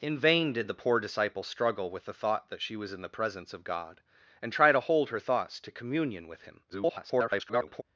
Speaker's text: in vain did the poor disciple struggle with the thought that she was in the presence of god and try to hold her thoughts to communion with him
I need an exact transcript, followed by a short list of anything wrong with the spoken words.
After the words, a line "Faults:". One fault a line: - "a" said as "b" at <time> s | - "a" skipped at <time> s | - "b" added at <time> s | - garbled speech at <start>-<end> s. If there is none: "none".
in vain did the poor disciple struggle with the thought that she was in the presence of god and try to hold her thoughts to communion with him [garbled]
Faults:
- garbled speech at 6.7-7.8 s